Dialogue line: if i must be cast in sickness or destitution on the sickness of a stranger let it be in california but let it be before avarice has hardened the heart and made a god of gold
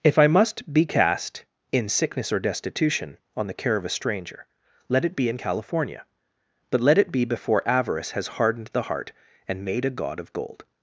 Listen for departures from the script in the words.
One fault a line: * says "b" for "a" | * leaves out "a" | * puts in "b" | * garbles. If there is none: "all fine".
* says "care" for "sickness"